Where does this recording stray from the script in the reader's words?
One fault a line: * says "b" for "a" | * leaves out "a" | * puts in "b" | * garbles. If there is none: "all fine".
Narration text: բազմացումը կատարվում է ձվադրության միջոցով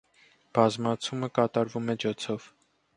* leaves out "ձվադրության"